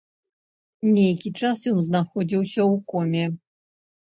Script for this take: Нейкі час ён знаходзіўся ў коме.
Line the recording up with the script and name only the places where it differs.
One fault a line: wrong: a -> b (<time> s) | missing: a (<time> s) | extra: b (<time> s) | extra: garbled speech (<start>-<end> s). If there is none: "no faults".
no faults